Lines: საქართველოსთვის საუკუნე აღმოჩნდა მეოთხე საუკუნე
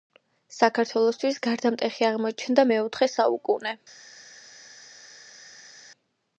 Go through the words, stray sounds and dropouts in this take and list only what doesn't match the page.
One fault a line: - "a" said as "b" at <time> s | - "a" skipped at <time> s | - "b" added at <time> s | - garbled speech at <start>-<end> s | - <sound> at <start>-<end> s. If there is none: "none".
- "საუკუნე" said as "გარდამტეხი" at 1.5 s